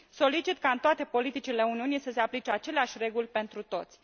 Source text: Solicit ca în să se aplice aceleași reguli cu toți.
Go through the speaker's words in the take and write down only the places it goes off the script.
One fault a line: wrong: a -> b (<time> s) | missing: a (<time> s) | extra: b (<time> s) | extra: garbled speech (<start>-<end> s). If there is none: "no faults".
extra: toate politicile Uniunii (0.8 s)
wrong: cu -> pentru (3.3 s)